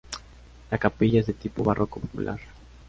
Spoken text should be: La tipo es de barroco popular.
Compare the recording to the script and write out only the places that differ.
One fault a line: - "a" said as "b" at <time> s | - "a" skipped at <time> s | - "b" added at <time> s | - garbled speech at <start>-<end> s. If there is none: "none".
- "tipo" said as "capilla" at 0.8 s
- "tipo" added at 1.3 s